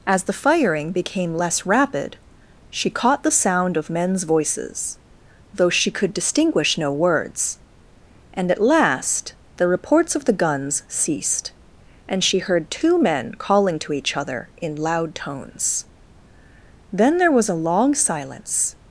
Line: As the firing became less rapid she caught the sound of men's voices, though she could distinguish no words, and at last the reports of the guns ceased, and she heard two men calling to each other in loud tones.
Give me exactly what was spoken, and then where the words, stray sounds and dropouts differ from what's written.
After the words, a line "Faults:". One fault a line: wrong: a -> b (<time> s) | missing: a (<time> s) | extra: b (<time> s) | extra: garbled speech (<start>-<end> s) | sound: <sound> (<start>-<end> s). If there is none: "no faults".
As the firing became less rapid she caught the sound of men's voices, though she could distinguish no words, and at last the reports of the guns ceased, and she heard two men calling to each other in loud tones. Then there was a long silence
Faults:
extra: Then there was a long silence (16.9 s)